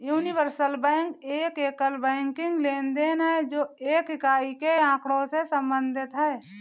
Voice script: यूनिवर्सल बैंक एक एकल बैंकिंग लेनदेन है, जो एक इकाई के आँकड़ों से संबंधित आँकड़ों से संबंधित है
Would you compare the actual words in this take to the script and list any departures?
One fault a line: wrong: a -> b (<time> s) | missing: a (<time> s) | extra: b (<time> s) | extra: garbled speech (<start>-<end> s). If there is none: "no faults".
missing: आँकड़ों से संबंधित (6.1 s)